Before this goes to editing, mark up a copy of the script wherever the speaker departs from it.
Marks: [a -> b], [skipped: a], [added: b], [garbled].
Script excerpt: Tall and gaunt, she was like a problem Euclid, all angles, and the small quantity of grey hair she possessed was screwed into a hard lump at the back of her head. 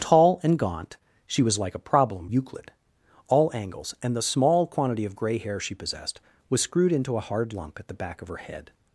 Tall and gaunt, she was like a problem Euclid, all angles, and the small quantity of grey hair she possessed was screwed into a hard lump at the back of her head.